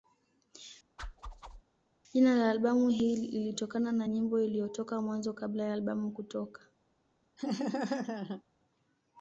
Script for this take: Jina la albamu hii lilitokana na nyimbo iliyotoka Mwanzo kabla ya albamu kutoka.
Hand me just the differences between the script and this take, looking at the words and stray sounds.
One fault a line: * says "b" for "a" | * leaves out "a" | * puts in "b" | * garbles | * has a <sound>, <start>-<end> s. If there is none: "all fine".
* has a whoosh, 1.0-1.6 s
* has a laugh, 7.4-8.4 s